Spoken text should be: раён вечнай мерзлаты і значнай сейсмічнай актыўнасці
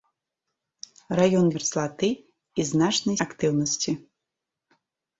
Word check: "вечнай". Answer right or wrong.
wrong